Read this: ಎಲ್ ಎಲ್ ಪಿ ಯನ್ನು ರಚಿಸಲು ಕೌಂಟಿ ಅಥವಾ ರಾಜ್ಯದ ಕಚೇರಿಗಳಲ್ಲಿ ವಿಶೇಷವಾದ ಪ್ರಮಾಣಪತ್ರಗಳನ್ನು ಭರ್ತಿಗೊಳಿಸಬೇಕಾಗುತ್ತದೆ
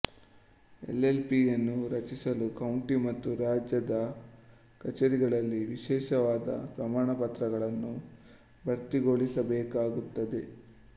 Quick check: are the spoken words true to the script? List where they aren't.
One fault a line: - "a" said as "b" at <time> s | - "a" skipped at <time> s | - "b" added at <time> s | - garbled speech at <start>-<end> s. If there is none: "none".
- "ಅಥವಾ" said as "ಮತ್ತು" at 3.0 s